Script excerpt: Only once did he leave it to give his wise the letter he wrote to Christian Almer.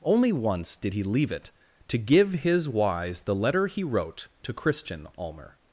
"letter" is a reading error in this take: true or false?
false